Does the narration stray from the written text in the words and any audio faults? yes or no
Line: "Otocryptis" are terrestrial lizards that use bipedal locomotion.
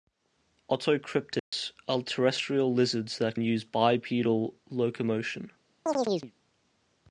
yes